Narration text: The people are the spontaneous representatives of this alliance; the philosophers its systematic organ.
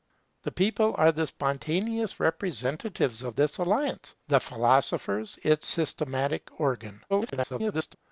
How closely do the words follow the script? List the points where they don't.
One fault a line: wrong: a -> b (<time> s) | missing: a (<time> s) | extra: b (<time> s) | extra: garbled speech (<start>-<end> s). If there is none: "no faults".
extra: garbled speech (7.1-8.0 s)